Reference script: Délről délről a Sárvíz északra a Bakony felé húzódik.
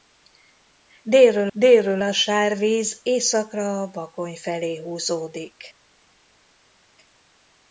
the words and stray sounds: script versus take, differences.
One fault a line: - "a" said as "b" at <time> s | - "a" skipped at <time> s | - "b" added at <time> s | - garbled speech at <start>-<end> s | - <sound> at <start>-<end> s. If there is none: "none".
none